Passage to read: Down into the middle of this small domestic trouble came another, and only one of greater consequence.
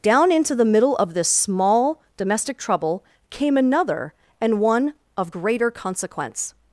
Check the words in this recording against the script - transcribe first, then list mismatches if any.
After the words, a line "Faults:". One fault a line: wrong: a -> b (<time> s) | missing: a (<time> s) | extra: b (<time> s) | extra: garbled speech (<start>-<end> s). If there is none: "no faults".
Down into the middle of this small domestic trouble came another, and one of greater consequence.
Faults:
missing: only (4.6 s)